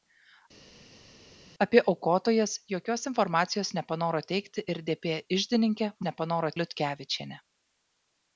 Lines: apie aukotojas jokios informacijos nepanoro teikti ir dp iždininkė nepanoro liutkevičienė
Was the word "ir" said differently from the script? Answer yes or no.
no